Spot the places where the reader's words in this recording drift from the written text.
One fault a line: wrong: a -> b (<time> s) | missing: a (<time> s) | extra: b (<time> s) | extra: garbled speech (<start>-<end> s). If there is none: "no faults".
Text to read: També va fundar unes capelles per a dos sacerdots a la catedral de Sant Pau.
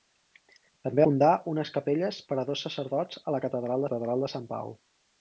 missing: va (1.1 s)
extra: catedral (3.9 s)